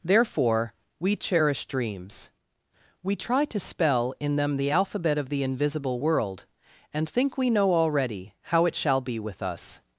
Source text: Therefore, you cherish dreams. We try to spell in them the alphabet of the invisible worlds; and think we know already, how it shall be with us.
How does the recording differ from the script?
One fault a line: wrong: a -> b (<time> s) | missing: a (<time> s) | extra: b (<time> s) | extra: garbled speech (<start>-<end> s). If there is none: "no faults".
wrong: you -> we (1.0 s)
wrong: worlds -> world (6.0 s)